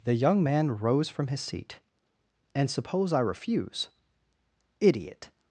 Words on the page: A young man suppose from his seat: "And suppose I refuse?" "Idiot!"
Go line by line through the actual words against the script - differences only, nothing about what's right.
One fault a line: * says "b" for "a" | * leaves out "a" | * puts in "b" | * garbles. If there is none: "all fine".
* says "The" for "A"
* says "rose" for "suppose"